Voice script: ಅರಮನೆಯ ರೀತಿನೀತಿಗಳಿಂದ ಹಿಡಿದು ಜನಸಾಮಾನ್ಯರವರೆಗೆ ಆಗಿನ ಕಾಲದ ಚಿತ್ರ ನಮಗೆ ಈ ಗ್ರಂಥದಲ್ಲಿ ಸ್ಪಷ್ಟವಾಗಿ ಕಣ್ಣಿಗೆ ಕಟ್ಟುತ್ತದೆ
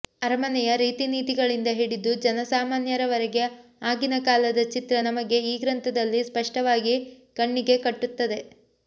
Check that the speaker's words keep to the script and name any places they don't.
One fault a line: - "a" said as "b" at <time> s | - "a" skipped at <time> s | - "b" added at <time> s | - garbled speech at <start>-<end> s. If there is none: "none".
none